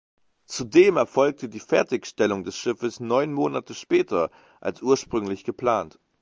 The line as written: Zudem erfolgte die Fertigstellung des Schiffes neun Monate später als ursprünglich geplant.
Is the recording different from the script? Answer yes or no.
no